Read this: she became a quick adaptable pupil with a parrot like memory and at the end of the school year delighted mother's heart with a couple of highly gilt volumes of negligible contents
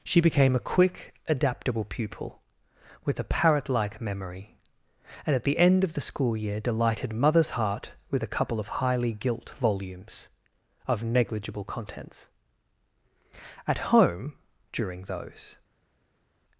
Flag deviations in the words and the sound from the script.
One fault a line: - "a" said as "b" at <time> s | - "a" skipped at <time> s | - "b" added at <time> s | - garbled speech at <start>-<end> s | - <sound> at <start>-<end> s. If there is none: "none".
- "at home during those" added at 13.7 s